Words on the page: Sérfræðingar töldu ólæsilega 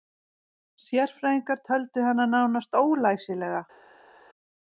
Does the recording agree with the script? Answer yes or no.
no